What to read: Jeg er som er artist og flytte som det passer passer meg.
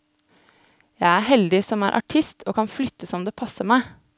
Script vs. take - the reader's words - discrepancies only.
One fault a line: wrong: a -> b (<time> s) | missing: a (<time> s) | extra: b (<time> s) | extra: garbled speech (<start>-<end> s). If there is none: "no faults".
extra: heldig (1.3 s)
extra: kan (2.5 s)
missing: passer (3.7 s)